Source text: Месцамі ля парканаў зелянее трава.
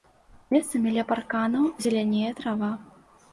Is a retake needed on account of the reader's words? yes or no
no